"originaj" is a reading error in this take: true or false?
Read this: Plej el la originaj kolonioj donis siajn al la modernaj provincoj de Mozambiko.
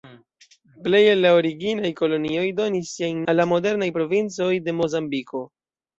false